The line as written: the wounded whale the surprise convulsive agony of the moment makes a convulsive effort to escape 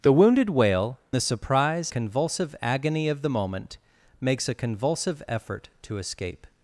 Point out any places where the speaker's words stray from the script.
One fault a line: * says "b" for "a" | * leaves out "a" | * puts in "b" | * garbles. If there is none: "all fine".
all fine